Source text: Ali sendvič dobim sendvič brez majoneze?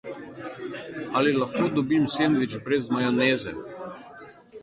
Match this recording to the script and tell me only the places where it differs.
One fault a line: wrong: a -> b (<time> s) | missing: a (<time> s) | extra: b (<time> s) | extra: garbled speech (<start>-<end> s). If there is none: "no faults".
wrong: sendvič -> lahko (1.4 s)